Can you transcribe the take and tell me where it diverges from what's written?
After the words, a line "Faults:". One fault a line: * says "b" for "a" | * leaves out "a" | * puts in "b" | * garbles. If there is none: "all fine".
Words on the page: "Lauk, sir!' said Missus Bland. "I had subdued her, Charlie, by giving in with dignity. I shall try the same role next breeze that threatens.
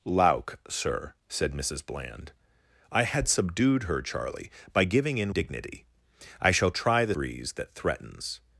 "Lauk, sir!' said Missus Bland. "I had subdued her, Charlie, by giving in dignity. I shall try the breeze that threatens.
Faults:
* leaves out "with"
* leaves out "same role next"